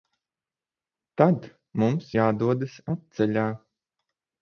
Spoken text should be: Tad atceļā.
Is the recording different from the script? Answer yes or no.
yes